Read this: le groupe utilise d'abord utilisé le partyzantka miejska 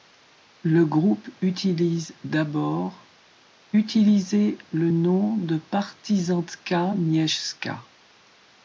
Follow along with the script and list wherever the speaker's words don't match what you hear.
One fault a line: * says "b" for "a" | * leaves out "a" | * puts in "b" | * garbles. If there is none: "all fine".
* puts in "nom de"